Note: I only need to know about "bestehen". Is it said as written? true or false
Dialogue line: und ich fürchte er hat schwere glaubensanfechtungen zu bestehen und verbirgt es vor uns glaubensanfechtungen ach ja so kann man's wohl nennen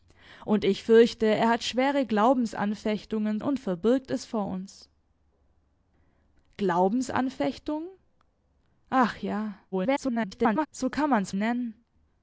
false